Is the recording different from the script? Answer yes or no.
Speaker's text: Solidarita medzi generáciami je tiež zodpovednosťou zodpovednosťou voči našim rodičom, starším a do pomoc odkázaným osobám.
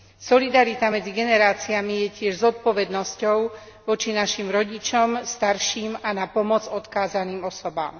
yes